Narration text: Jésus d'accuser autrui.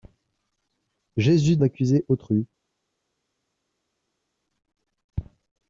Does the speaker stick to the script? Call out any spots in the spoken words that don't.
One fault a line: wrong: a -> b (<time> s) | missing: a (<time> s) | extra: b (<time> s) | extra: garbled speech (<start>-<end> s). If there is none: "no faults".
no faults